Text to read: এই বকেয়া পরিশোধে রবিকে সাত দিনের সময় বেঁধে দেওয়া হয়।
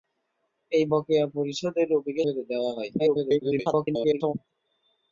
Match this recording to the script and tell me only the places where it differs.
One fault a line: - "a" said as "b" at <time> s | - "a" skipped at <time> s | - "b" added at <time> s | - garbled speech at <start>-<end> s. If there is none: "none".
- "সাত দিনের সময়" skipped at 2.2 s
- garbled speech at 3.0-4.3 s